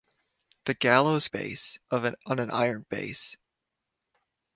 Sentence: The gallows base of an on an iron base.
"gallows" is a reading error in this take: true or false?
false